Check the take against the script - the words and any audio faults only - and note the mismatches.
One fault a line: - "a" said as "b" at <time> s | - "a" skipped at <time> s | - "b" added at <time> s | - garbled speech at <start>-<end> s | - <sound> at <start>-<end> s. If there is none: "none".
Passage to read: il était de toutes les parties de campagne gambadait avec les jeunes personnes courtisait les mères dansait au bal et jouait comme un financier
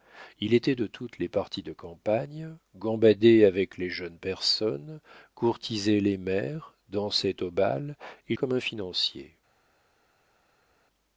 - "jouait" skipped at 8.3 s